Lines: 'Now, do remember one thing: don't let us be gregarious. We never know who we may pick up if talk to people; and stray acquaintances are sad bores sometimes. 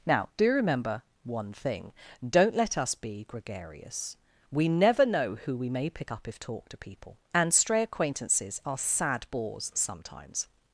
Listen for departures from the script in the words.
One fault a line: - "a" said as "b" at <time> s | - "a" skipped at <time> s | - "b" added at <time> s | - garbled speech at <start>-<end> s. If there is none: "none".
none